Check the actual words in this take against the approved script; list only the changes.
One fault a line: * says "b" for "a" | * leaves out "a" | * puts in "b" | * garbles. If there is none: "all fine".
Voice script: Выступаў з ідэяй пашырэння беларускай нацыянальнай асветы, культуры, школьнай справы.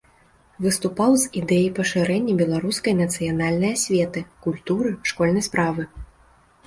all fine